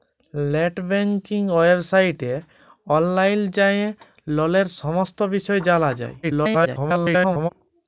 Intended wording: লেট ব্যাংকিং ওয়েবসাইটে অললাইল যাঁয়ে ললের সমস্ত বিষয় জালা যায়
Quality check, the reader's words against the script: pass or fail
fail